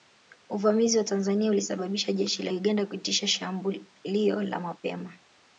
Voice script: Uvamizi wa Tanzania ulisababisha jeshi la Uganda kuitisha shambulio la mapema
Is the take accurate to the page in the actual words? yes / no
yes